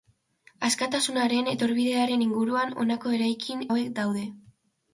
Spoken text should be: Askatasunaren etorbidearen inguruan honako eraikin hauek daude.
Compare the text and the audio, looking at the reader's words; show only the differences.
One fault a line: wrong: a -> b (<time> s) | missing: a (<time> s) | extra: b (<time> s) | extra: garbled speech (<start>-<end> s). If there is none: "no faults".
no faults